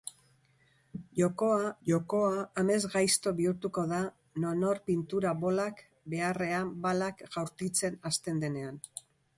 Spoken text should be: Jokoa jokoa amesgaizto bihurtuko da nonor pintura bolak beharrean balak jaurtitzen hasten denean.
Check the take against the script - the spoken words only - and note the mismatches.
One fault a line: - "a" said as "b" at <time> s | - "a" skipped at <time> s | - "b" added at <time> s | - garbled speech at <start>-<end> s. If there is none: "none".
none